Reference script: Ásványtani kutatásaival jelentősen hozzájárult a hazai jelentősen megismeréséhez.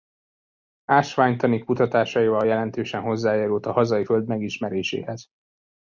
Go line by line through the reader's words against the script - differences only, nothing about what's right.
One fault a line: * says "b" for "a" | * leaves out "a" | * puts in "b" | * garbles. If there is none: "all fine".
* says "föld" for "jelentősen"